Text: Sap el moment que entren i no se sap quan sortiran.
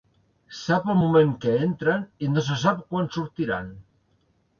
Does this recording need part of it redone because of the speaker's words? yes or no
no